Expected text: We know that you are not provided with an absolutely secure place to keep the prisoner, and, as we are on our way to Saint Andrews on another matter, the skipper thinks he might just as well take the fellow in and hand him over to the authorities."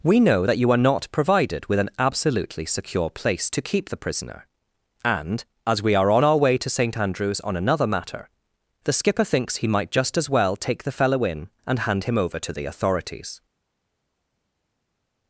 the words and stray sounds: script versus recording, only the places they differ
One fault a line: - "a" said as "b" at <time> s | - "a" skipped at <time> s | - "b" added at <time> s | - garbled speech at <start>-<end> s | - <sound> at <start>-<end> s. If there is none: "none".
none